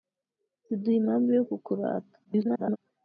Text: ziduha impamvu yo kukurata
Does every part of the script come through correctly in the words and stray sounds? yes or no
no